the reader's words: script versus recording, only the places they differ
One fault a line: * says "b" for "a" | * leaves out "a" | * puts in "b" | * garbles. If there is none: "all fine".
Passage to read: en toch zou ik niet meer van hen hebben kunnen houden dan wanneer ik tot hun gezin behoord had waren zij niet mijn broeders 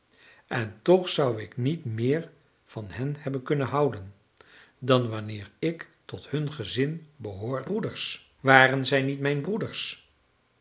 * says "broeders" for "had"